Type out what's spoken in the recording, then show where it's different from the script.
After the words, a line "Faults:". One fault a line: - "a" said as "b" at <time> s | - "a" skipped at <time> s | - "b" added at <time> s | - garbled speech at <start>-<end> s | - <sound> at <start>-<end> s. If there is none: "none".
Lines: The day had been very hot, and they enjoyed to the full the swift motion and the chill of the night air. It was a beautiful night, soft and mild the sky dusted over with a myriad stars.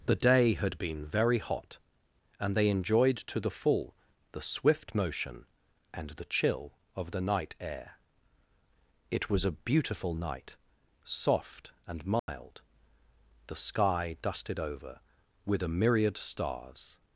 The day had been very hot, and they enjoyed to the full the swift motion and the chill of the night air. It was a beautiful night, soft and mild the sky dusted over with a myriad stars.
Faults:
- dropout at 12.2-12.3 s